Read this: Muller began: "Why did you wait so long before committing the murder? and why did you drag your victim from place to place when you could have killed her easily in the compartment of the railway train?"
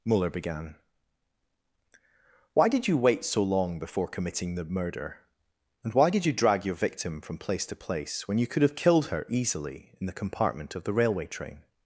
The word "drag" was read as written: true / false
true